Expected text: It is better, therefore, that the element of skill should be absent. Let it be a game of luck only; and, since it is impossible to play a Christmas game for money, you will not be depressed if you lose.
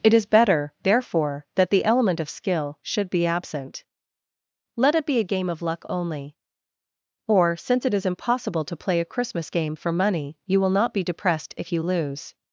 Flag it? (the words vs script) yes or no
yes